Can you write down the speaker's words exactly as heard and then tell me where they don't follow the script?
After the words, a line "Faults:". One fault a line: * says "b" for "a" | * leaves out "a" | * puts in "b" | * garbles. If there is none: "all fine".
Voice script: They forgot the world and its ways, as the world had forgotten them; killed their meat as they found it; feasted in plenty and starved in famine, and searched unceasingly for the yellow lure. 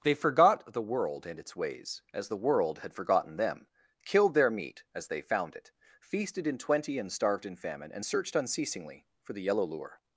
They forgot the world and its ways, as the world had forgotten them; killed their meat as they found it; feasted in twenty and starved in famine, and searched unceasingly for the yellow lure.
Faults:
* says "twenty" for "plenty"